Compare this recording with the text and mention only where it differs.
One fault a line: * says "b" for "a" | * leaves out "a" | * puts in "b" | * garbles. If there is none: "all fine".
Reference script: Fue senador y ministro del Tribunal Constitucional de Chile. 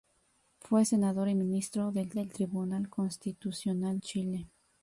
* puts in "del"
* leaves out "de"